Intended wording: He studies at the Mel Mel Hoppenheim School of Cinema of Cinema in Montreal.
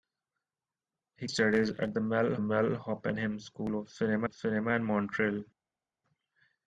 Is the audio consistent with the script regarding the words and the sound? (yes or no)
yes